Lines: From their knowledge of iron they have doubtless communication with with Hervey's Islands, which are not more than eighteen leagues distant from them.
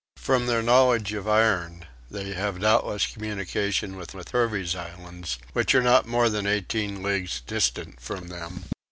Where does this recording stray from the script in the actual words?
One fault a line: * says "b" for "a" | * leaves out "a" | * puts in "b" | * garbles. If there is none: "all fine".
all fine